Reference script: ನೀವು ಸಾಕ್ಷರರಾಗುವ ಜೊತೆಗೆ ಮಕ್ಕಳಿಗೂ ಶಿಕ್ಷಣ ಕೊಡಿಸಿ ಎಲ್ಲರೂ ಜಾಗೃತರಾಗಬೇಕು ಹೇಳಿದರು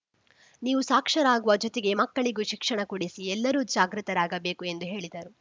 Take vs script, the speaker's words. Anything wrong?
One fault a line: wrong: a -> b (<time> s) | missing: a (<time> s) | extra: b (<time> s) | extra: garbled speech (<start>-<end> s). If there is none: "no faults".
extra: ಎಂದು (4.6 s)